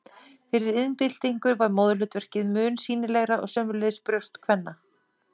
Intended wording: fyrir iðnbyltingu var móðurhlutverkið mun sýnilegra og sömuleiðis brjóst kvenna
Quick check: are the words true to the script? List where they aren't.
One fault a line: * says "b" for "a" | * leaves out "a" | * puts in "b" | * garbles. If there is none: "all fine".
all fine